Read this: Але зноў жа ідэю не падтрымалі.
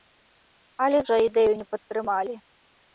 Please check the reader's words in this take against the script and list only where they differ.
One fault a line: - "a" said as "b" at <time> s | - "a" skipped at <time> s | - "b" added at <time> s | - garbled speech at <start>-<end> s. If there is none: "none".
- "зноў" skipped at 1.0 s